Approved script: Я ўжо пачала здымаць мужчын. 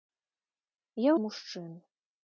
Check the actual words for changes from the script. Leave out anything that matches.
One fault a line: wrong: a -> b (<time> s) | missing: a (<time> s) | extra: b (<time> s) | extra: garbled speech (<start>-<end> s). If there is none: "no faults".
missing: ўжо пачала здымаць (1.1 s)